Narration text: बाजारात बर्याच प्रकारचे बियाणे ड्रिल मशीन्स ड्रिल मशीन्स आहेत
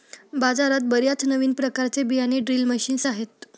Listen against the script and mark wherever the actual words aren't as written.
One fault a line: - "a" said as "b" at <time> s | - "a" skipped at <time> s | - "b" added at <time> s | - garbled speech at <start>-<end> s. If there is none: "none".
- "नवीन" added at 1.2 s
- "ड्रिल मशीन्स" skipped at 3.1 s